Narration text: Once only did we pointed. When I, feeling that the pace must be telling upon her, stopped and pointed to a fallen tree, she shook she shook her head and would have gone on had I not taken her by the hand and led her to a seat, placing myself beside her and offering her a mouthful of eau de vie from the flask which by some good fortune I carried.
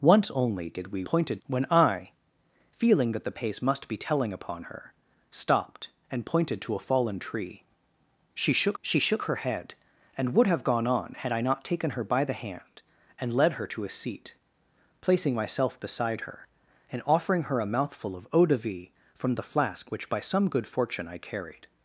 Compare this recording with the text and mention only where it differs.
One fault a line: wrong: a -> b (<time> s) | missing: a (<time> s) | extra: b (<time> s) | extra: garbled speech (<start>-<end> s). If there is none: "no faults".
no faults